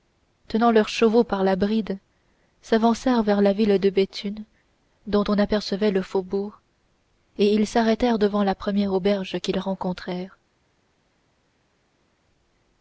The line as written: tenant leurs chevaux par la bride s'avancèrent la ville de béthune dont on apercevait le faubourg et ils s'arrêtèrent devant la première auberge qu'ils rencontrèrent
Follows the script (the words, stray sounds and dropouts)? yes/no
no